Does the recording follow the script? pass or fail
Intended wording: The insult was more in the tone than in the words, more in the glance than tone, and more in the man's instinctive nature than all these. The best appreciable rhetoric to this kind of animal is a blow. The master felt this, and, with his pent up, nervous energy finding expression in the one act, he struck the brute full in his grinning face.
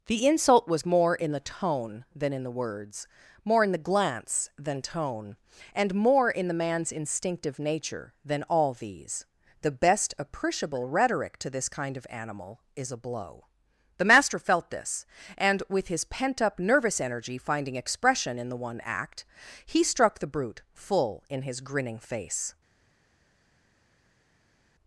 pass